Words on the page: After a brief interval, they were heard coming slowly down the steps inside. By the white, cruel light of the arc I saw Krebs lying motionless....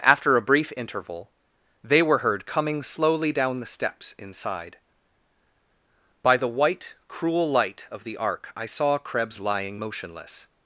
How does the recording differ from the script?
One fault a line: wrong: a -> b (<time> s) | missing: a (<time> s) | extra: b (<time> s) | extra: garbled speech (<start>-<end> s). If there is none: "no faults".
no faults